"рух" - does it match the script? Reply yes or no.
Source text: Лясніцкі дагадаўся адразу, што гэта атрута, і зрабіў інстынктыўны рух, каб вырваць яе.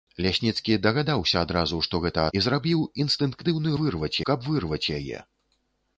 no